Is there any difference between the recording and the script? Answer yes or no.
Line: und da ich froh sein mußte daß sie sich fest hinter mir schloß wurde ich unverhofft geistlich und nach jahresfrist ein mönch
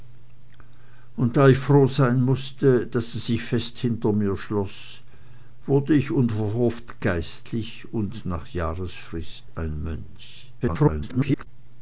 yes